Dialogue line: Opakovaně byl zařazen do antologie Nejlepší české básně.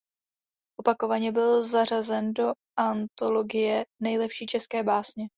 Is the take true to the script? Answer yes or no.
yes